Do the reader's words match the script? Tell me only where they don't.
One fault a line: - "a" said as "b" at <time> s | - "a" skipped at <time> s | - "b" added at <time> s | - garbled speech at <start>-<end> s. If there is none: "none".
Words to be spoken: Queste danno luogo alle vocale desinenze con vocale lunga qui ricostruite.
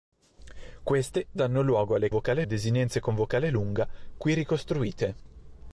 none